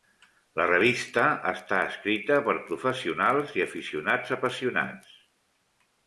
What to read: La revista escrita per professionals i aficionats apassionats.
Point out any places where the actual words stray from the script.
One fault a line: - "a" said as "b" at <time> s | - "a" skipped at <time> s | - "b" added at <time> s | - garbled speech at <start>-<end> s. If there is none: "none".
- "està" added at 1.5 s